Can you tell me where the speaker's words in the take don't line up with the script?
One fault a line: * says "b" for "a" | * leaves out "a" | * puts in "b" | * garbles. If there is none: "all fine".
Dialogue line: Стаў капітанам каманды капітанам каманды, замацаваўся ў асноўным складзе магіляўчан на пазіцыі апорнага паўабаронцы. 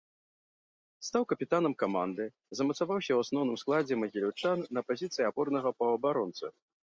* leaves out "капітанам каманды"